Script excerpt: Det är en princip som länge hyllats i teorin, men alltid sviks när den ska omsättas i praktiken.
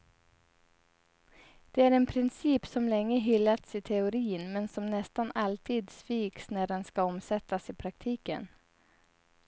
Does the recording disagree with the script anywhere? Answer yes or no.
yes